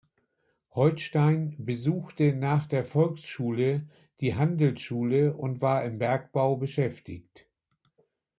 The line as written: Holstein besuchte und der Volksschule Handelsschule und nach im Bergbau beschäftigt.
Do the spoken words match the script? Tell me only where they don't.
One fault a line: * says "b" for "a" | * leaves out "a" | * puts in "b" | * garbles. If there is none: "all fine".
* says "nach" for "und"
* puts in "die"
* says "war" for "nach"